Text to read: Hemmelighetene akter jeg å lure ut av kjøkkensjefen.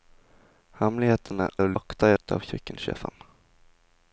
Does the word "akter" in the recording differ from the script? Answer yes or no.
yes